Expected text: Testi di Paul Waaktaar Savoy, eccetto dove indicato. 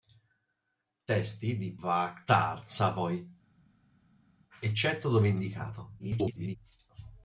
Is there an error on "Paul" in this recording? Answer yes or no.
yes